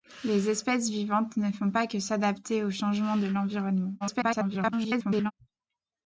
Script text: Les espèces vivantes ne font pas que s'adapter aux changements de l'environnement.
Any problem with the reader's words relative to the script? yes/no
yes